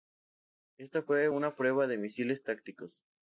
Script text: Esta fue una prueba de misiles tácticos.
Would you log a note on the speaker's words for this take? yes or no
no